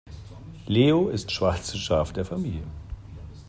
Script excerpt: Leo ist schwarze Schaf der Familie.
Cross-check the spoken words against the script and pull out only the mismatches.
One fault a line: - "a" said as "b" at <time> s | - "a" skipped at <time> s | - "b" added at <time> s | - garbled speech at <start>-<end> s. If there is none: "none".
none